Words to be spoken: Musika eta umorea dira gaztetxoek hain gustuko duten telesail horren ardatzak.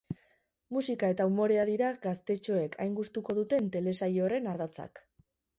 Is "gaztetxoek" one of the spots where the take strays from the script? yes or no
no